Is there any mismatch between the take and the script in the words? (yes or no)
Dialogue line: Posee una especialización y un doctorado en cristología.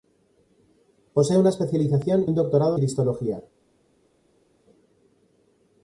yes